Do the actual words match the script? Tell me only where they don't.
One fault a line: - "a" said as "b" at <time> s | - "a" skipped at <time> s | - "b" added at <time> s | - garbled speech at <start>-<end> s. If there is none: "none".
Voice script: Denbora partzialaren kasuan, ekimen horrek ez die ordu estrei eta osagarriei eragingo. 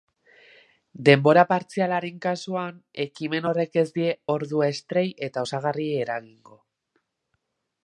none